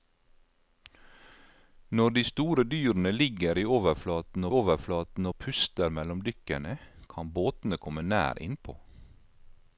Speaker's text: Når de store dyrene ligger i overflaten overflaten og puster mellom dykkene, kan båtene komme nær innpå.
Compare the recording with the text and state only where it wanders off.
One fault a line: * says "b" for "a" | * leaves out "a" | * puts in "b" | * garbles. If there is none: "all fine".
all fine